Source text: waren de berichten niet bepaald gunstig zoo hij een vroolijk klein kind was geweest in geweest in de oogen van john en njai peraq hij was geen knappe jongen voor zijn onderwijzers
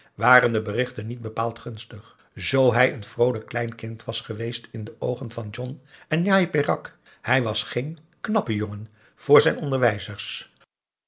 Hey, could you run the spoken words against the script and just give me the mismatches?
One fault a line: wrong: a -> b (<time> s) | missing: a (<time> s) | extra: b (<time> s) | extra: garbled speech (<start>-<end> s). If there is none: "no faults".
missing: geweest in (4.8 s)